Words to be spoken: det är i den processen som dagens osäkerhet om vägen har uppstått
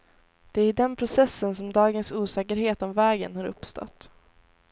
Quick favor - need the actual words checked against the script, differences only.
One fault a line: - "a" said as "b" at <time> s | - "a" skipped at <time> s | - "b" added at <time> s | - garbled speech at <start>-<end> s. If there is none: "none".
none